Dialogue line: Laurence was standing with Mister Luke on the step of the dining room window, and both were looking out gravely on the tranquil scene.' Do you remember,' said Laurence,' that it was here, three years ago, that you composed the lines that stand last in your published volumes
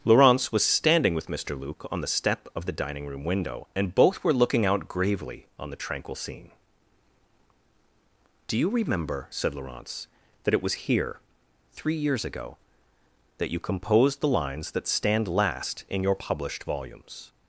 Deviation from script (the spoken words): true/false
false